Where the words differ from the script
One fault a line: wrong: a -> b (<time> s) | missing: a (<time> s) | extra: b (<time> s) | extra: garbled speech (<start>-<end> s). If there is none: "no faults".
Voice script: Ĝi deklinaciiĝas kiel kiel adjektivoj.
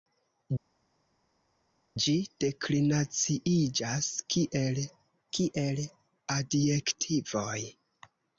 no faults